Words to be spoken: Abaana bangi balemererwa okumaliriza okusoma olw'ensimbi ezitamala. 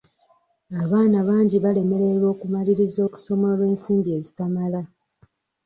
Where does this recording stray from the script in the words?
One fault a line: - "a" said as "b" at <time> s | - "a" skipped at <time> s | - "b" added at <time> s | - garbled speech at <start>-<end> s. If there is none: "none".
none